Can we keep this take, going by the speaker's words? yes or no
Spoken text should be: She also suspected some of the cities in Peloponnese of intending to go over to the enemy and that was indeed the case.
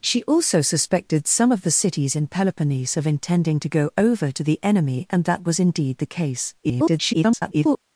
no